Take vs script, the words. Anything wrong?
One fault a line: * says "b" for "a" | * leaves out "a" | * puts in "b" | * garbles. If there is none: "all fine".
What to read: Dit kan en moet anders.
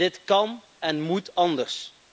all fine